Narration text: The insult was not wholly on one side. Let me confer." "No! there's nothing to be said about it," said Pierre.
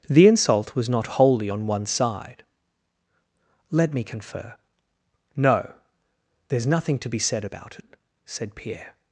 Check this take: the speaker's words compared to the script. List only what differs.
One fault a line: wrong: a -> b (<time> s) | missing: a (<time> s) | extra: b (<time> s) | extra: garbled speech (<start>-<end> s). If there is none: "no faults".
no faults